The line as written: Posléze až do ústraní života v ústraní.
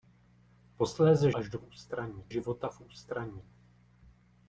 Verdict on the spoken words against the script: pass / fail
pass